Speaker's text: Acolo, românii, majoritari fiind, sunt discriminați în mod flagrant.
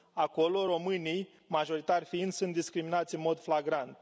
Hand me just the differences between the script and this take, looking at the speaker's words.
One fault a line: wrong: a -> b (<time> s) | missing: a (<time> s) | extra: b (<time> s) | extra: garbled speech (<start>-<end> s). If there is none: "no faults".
no faults